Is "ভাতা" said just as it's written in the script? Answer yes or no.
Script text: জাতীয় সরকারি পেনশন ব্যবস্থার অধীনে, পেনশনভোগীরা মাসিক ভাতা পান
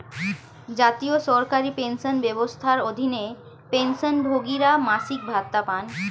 yes